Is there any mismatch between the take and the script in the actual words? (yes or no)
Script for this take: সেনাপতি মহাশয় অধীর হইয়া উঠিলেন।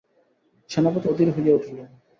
yes